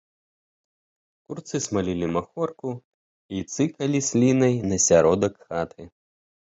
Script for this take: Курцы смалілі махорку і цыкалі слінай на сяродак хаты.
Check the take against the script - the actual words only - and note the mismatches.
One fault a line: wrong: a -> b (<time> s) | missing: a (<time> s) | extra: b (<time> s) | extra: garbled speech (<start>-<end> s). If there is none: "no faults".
no faults